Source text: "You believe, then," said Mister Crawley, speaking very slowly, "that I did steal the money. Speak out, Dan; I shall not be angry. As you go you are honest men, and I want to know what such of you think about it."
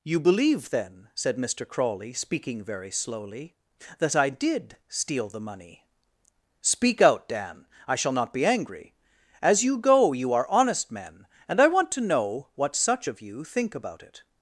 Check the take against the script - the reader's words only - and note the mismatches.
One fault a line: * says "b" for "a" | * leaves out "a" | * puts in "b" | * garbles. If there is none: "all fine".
all fine